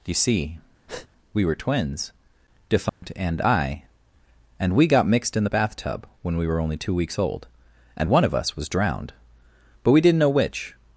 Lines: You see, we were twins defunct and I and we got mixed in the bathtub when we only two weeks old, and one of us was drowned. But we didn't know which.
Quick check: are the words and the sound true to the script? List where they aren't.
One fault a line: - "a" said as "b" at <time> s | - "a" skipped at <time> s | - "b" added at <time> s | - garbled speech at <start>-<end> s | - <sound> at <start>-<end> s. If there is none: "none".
- breath at 0.9-1.1 s
- dropout at 2.9-3.0 s
- "were" added at 6.5 s